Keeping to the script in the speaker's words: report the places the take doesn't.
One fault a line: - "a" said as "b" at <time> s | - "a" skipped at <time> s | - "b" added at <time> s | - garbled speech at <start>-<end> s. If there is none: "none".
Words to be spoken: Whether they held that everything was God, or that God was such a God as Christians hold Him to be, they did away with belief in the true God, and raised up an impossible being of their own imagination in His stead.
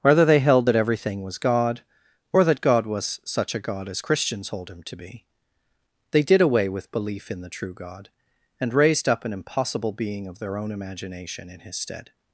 none